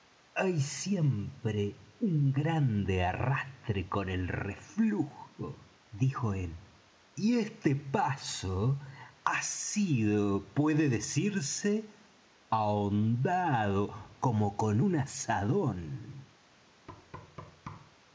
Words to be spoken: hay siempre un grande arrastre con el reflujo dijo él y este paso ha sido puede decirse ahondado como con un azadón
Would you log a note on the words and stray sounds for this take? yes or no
yes